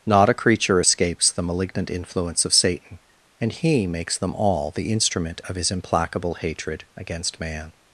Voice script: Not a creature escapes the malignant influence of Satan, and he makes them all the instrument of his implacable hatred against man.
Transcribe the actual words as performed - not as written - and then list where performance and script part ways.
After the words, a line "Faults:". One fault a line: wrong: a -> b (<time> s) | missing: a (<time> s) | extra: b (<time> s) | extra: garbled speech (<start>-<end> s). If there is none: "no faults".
Not a creature escapes the malignant influence of Satan, and he makes them all the instrument of his implacable hatred against man.
Faults:
no faults